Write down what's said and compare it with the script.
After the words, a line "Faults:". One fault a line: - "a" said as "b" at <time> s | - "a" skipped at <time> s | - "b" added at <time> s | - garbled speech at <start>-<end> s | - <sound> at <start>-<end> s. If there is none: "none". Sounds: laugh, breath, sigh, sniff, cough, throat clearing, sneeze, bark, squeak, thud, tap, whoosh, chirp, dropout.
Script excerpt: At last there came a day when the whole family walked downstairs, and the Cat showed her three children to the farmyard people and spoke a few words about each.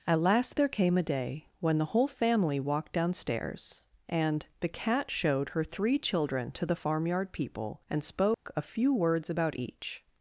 At last there came a day when the whole family walked downstairs, and the Cat showed her three children to the farmyard people and spoke a few words about each.
Faults:
- dropout at 8.3-8.5 s